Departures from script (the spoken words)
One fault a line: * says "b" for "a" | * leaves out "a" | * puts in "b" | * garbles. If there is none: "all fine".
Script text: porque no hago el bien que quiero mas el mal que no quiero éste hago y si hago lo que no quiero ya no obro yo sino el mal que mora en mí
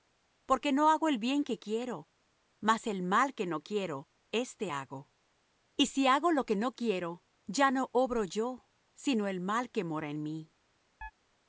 all fine